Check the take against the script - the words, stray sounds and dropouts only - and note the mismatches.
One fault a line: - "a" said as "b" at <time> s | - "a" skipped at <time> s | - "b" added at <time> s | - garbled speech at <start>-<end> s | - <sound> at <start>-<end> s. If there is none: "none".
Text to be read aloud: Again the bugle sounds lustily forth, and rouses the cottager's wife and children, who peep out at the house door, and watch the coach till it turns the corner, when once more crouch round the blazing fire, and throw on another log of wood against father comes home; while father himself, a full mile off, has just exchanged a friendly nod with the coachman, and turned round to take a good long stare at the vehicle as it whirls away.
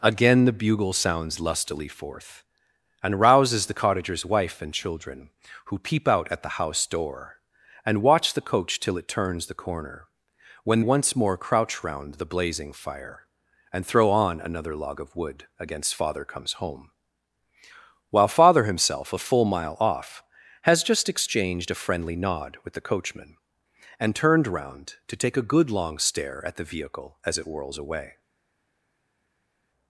none